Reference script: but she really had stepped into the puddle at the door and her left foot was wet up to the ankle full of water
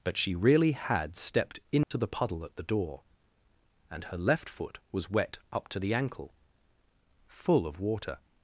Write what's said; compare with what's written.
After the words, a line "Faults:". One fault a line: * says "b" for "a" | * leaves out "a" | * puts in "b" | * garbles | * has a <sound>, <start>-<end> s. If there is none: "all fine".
but she really had stepped into the puddle at the door and her left foot was wet up to the ankle full of water
Faults:
* has a dropout, 1.8-1.9 s